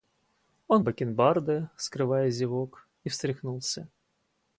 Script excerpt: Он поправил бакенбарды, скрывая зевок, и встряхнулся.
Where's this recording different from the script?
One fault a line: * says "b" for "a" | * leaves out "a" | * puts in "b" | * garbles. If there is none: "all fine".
* leaves out "поправил"